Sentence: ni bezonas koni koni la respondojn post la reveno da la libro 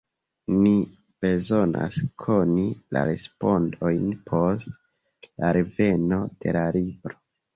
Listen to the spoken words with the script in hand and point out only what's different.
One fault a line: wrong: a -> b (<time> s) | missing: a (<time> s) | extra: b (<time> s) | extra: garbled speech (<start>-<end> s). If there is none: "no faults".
missing: koni (2.6 s)
wrong: da -> de (6.4 s)